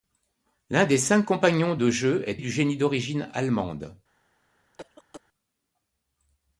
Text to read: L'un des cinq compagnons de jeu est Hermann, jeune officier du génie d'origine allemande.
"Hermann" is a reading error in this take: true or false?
true